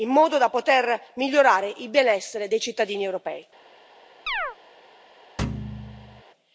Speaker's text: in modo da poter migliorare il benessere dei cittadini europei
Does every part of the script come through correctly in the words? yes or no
yes